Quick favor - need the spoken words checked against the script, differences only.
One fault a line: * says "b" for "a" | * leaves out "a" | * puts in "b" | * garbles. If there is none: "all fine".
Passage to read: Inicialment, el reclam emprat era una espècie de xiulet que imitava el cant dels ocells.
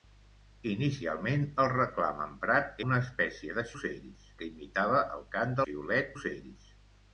* leaves out "era"
* says "ocells" for "xiulet"
* says "xiulet" for "dels"